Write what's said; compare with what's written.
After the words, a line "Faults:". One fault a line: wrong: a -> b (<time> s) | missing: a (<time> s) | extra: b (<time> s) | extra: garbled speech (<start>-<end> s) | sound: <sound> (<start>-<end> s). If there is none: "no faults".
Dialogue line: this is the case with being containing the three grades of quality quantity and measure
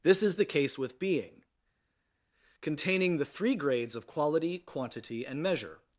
this is the case with being containing the three grades of quality quantity and measure
Faults:
no faults